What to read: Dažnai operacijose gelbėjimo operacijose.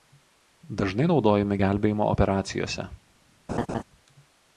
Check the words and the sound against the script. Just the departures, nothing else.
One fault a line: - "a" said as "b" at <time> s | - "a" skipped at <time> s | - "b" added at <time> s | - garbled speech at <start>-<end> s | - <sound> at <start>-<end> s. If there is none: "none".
- "operacijose" said as "naudojami" at 1.1 s
- laugh at 3.5-3.8 s